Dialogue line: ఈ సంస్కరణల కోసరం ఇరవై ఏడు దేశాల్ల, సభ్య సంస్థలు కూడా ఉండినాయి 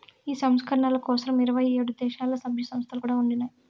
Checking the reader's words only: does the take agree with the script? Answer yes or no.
yes